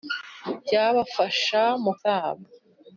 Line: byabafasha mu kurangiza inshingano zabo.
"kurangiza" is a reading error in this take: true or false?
true